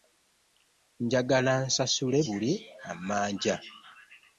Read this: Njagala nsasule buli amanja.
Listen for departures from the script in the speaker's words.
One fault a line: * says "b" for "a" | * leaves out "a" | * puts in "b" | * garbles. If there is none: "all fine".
all fine